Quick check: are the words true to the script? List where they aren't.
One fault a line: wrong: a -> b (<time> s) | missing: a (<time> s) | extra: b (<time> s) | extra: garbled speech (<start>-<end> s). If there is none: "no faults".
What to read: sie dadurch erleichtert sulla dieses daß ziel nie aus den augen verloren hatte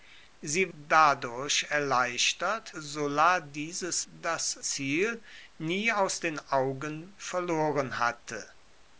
no faults